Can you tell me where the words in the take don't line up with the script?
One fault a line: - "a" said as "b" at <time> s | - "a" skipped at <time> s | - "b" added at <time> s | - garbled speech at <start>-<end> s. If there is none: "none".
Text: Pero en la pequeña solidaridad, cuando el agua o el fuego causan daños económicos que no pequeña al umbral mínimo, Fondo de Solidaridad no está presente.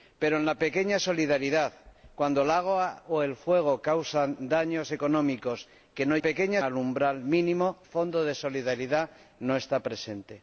none